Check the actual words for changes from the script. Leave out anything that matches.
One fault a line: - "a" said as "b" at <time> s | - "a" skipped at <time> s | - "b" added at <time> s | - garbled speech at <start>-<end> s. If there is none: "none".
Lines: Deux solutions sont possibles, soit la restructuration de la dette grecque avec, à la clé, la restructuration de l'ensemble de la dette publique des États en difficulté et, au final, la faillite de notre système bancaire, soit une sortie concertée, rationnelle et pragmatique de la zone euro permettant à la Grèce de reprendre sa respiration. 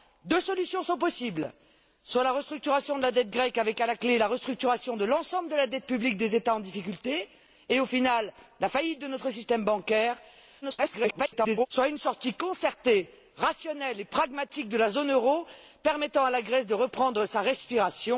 - garbled speech at 10.6-11.7 s